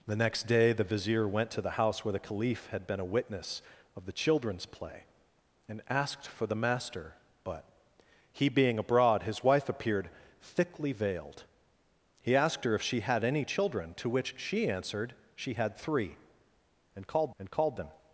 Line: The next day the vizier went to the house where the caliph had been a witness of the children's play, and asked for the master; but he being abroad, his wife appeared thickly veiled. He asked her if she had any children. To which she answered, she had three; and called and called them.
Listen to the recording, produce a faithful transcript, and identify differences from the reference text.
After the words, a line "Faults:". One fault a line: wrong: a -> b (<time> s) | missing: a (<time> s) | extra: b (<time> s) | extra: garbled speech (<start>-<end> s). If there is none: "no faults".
The next day the vizier went to the house where the caliph had been a witness of the children's play, and asked for the master; but he being abroad, his wife appeared thickly veiled. He asked her if she had any children. To which she answered, she had three; and called and called them.
Faults:
no faults